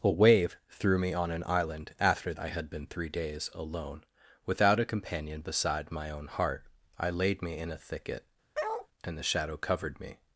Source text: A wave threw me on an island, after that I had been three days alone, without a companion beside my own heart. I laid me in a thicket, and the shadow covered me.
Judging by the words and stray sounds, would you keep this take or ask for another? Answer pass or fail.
fail